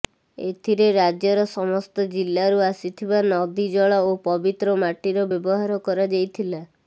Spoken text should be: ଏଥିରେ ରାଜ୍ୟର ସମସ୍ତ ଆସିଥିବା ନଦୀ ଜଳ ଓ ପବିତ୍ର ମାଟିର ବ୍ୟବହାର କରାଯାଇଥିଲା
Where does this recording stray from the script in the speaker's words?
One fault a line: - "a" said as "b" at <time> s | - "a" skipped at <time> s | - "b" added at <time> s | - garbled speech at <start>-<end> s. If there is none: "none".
- "ଜିଲ୍ଲାରୁ" added at 2.1 s